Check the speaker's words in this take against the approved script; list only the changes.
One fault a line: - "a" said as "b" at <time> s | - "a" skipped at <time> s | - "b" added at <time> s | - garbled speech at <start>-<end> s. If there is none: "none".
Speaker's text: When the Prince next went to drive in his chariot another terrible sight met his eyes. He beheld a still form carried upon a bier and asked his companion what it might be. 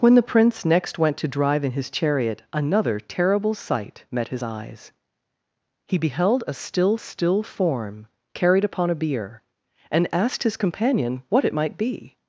- "still" added at 7.0 s